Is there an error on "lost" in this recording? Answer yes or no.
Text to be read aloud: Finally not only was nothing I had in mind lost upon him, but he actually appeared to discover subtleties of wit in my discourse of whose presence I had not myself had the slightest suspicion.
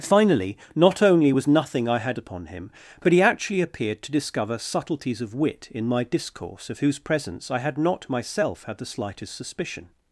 yes